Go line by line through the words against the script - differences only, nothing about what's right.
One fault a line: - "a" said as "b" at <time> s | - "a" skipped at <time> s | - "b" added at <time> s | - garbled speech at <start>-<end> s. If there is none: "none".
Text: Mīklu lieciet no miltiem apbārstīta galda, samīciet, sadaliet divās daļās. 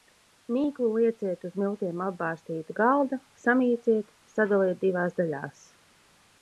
- "no" said as "uz" at 1.5 s